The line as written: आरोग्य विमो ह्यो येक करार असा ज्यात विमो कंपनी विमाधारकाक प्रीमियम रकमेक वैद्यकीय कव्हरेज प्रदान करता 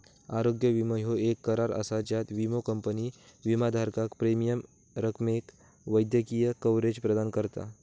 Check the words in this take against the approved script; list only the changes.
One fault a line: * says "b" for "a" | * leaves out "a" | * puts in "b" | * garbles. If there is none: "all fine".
all fine